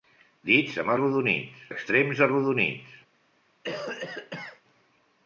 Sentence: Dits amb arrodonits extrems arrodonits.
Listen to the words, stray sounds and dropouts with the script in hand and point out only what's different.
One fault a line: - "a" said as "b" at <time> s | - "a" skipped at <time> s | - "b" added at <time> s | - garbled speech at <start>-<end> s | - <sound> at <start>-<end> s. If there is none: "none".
- cough at 3.6-4.6 s